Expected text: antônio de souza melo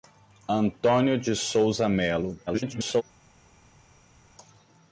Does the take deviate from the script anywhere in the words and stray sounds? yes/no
yes